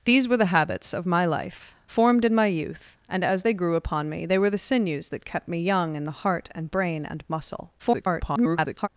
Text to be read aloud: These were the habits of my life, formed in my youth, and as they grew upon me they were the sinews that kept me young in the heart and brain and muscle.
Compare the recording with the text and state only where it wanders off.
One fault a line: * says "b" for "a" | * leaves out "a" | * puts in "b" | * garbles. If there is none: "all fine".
* garbles